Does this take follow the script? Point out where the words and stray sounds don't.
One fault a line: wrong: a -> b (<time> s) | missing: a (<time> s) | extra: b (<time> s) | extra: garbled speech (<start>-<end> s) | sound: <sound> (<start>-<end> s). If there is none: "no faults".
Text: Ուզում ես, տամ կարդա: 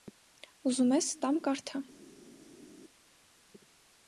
no faults